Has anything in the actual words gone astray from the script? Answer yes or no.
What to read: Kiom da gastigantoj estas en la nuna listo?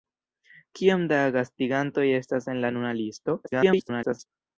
yes